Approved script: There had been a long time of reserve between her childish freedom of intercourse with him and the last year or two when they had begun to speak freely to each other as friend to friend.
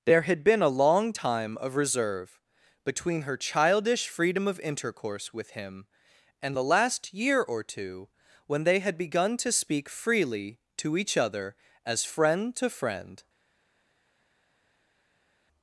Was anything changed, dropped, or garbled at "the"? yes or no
no